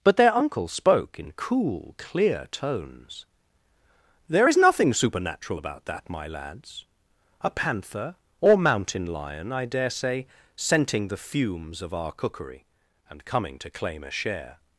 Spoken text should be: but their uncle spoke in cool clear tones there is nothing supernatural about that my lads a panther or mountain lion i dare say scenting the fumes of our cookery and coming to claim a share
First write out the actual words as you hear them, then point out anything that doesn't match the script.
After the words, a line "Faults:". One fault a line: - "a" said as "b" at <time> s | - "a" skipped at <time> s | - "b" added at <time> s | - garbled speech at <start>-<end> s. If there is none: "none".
but their uncle spoke in cool clear tones there is nothing supernatural about that my lads a panther or mountain lion i dare say scenting the fumes of our cookery and coming to claim a share
Faults:
none